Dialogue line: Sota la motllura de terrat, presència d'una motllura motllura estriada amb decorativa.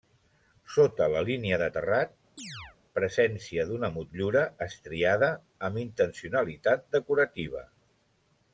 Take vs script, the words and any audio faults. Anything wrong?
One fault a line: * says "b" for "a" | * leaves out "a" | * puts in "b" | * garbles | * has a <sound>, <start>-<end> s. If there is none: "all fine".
* says "línia" for "motllura"
* has a chirp, 2.4-2.8 s
* leaves out "motllura"
* puts in "intencionalitat"